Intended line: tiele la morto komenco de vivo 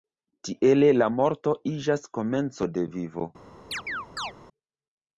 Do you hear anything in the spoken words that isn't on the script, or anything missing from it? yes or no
yes